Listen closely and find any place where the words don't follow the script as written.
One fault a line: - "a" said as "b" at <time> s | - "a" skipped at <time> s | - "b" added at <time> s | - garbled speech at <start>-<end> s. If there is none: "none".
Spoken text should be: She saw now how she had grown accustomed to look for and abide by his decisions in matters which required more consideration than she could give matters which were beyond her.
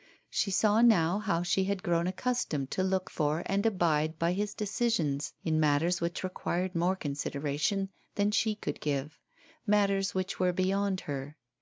none